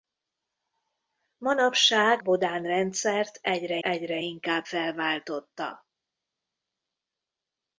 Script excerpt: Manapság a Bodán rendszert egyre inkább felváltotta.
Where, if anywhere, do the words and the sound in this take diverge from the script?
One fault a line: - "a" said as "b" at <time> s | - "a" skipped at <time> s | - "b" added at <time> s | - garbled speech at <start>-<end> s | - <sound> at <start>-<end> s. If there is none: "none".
- "a" skipped at 2.2 s
- "egyre" added at 3.8 s